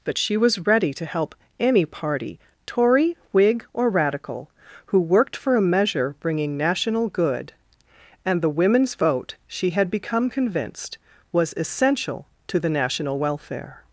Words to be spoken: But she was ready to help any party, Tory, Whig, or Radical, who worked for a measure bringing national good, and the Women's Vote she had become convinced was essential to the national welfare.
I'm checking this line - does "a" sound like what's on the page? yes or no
yes